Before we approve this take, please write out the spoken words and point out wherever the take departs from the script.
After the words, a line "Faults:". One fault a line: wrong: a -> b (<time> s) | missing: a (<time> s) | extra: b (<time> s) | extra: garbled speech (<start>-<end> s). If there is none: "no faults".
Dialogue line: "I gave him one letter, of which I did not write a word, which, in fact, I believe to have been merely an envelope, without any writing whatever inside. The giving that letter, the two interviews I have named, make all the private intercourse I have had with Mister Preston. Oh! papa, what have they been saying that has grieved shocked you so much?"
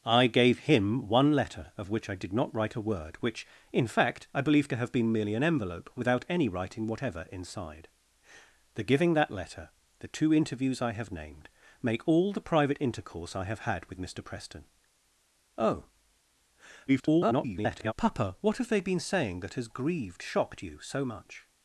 "I gave him one letter, of which I did not write a word, which, in fact, I believe to have been merely an envelope, without any writing whatever inside. The giving that letter, the two interviews I have named, make all the private intercourse I have had with Mister Preston. Oh! [garbled] papa, what have they been saying that has grieved shocked you so much?"
Faults:
extra: garbled speech (16.9-17.9 s)